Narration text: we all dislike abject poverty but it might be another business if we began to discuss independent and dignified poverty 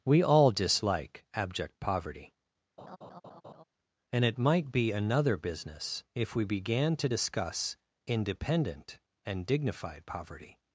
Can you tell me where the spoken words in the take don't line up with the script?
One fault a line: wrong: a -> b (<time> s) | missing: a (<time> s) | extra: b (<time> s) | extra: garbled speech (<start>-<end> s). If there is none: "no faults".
wrong: but -> and (4.1 s)